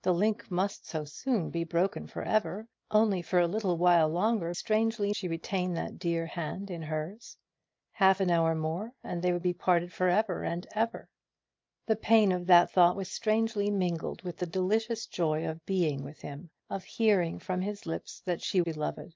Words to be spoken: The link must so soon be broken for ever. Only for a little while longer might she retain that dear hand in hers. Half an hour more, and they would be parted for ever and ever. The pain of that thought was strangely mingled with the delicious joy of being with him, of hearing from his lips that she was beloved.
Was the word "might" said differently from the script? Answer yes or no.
yes